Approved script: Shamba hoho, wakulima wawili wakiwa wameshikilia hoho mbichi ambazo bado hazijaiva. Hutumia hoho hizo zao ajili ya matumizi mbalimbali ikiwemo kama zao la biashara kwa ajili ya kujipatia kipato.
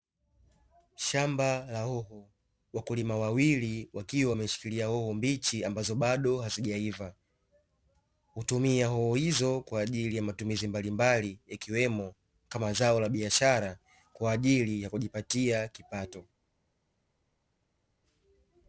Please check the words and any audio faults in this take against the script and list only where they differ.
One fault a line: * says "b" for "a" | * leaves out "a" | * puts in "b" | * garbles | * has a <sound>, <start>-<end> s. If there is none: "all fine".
* puts in "la"
* says "kwa" for "zao"